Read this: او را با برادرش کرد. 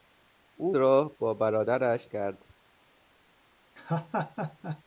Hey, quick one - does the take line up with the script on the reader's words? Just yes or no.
yes